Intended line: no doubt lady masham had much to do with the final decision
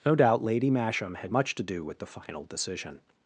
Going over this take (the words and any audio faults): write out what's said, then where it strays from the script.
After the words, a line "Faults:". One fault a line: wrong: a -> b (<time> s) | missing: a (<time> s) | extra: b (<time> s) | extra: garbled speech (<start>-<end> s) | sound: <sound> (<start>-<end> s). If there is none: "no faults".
no doubt lady masham had much to do with the final decision
Faults:
no faults